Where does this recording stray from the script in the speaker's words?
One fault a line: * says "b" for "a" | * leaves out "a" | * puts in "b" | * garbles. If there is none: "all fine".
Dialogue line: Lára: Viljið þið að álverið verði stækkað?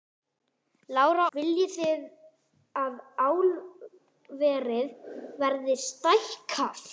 all fine